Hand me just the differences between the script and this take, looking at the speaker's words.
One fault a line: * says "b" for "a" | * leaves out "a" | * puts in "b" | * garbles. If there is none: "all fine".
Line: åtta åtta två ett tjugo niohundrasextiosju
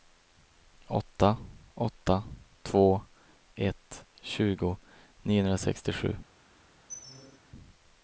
all fine